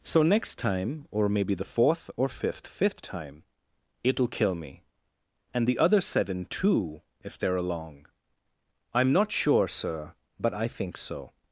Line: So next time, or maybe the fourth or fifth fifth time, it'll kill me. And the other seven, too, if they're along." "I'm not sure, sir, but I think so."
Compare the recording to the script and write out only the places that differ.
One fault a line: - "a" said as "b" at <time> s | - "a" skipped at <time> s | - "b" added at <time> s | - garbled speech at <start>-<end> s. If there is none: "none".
none